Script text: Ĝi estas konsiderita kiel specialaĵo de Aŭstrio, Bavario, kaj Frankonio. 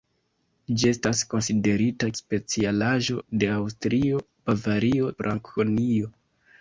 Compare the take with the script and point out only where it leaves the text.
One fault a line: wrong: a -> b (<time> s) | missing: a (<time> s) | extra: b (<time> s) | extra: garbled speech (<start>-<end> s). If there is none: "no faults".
missing: kiel (2.1 s)
missing: kaj (5.2 s)